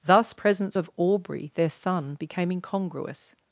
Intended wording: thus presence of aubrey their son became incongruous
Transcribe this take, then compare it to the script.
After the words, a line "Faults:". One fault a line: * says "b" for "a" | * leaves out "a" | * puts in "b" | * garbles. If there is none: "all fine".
thus presence of aubrey their son became incongruous
Faults:
all fine